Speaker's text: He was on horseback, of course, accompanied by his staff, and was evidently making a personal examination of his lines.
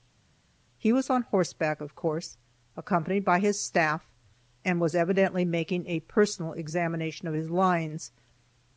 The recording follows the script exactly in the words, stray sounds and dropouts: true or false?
true